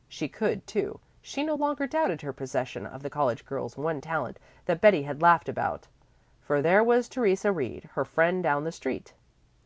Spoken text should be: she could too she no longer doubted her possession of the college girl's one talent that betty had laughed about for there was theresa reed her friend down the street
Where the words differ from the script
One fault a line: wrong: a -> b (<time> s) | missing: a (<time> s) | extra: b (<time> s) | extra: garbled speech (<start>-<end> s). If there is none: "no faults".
no faults